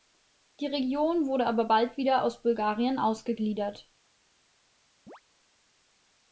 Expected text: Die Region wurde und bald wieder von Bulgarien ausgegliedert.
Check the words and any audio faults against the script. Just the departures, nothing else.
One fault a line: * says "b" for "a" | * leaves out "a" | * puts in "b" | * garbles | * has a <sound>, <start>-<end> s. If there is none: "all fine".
* says "aber" for "und"
* says "aus" for "von"
* has a chirp, 5.1-5.2 s